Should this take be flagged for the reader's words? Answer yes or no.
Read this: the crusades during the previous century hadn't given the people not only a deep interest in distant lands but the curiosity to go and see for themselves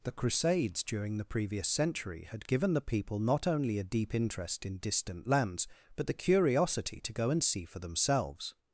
yes